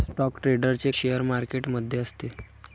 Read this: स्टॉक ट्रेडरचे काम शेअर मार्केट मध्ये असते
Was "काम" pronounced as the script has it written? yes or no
no